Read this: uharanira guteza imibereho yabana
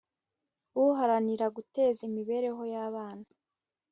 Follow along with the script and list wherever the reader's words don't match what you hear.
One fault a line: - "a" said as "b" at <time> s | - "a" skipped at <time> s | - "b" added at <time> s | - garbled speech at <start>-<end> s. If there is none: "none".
none